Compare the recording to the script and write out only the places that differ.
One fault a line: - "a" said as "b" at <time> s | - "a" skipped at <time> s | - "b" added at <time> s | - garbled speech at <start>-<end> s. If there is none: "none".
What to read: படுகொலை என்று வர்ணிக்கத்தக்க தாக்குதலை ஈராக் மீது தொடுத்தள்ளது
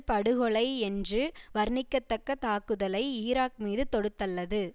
none